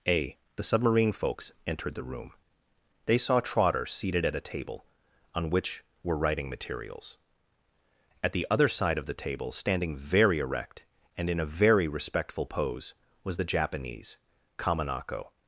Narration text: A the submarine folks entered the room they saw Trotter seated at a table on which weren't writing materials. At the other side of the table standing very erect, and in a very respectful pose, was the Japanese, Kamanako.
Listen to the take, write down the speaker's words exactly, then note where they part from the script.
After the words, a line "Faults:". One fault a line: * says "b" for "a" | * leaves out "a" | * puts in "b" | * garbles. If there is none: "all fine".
A the submarine folks entered the room they saw Trotter seated at a table on which were writing materials. At the other side of the table standing very erect, and in a very respectful pose, was the Japanese, Kamanako.
Faults:
* says "were" for "weren't"